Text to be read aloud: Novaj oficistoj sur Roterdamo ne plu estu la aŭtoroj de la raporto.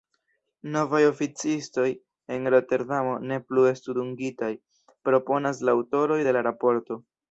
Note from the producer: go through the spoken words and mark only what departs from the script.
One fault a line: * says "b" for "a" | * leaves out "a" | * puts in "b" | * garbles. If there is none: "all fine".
* says "en" for "sur"
* puts in "dungitaj proponas"